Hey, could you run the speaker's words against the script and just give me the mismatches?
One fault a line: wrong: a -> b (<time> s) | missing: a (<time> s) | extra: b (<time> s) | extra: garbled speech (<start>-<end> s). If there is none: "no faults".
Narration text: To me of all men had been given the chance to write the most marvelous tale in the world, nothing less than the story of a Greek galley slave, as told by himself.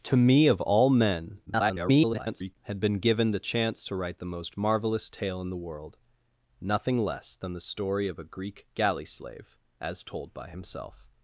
extra: garbled speech (1.5-2.6 s)